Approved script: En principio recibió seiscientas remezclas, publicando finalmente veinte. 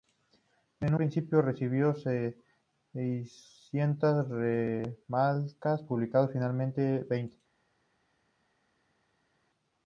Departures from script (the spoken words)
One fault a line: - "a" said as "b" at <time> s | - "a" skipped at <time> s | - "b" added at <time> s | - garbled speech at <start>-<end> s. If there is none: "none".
none